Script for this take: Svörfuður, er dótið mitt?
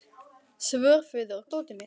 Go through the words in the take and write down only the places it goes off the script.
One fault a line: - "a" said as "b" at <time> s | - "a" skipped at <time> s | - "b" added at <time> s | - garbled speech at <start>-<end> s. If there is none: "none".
none